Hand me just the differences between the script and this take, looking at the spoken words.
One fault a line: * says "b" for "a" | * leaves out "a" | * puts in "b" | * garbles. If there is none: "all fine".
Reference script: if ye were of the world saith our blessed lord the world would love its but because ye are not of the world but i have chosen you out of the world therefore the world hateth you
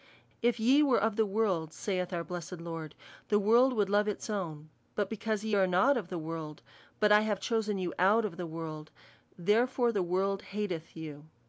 * puts in "own"